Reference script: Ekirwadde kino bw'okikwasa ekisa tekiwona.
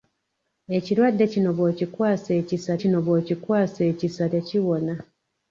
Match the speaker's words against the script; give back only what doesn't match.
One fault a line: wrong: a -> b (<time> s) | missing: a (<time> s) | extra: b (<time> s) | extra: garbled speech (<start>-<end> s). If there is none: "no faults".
extra: kino bw'okikwasa ekisa (2.8 s)